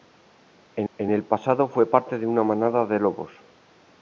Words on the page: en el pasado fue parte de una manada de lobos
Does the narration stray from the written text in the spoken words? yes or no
yes